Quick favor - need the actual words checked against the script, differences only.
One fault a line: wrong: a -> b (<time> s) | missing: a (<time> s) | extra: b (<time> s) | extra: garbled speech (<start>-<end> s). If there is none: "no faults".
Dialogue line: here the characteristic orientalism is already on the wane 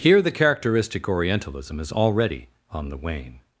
no faults